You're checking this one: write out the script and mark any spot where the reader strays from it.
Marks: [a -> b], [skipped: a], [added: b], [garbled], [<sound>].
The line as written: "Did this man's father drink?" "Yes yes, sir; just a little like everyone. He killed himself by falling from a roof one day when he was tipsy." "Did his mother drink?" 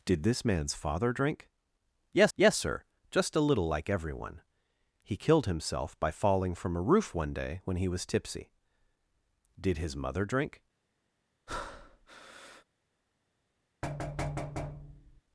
"Did this man's father drink?" "Yes yes, sir; just a little like everyone. He killed himself by falling from a roof one day when he was tipsy." "Did his mother drink?" [breath] [thud]